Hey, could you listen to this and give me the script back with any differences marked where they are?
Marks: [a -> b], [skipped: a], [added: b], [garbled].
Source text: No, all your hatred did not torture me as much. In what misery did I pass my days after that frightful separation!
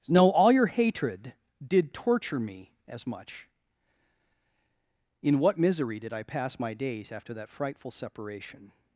No, all your hatred did [skipped: not] torture me as much. In what misery did I pass my days after that frightful separation!